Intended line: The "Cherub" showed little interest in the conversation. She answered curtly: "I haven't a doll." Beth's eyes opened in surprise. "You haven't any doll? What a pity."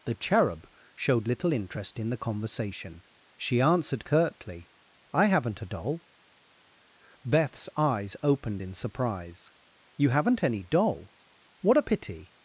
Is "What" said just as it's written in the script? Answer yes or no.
yes